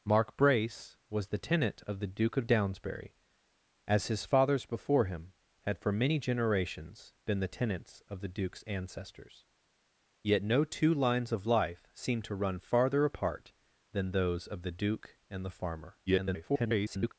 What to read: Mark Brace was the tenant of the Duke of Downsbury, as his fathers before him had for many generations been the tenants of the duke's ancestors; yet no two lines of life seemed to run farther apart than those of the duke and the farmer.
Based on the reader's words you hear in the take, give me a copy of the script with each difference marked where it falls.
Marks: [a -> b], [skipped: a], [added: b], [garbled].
Mark Brace was the tenant of the Duke of Downsbury, as his fathers before him had for many generations been the tenants of the duke's ancestors; yet no two lines of life seemed to run farther apart than those of the duke and the farmer. [garbled]